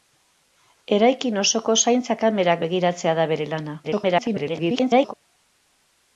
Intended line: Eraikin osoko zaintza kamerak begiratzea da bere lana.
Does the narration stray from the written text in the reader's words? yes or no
yes